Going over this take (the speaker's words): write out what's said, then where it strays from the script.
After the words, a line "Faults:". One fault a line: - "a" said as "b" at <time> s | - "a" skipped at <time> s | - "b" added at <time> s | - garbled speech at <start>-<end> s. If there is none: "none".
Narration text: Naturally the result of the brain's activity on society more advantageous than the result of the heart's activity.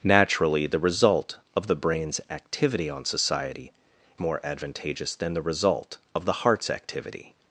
Naturally the result of the brain's activity on society more advantageous than the result of the heart's activity.
Faults:
none